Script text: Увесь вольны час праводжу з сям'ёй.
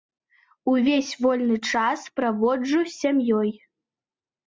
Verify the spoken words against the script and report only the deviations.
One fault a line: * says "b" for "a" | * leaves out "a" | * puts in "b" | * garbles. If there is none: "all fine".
all fine